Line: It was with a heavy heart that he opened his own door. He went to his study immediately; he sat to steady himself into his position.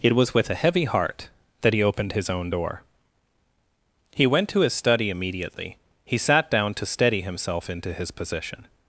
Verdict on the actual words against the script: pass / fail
fail